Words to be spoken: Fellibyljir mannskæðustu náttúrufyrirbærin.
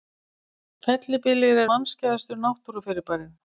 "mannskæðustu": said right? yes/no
yes